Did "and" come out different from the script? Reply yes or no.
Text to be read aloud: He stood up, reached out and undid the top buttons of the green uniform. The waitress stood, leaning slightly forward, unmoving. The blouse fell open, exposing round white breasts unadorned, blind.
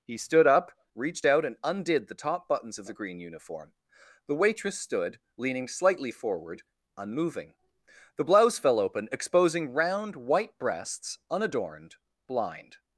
no